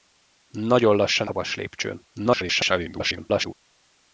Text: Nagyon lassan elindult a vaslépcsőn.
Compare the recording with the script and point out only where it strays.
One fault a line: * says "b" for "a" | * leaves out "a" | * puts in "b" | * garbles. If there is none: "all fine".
* leaves out "elindult"
* garbles